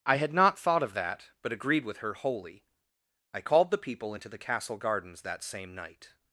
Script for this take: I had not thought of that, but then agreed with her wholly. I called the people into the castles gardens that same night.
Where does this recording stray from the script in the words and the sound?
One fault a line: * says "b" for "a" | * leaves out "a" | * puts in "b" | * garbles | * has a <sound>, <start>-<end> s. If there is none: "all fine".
* leaves out "then"
* says "castle" for "castles"